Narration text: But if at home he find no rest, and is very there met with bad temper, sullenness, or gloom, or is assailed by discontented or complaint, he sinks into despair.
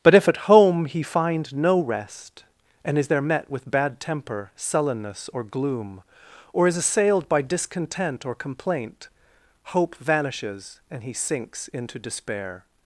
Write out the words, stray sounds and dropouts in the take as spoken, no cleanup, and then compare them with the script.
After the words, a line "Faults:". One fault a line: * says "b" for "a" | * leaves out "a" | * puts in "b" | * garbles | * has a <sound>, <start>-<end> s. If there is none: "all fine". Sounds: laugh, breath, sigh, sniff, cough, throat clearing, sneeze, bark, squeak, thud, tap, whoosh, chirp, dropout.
But if at home he find no rest, and is there met with bad temper, sullenness, or gloom, or is assailed by discontent or complaint, hope vanishes, and he sinks into despair.
Faults:
* leaves out "very"
* says "discontent" for "discontented"
* puts in "hope vanishes and"